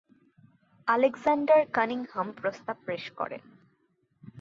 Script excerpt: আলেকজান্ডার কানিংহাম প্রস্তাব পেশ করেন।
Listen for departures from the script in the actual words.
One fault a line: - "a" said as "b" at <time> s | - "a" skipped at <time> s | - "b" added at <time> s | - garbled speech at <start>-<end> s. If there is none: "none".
none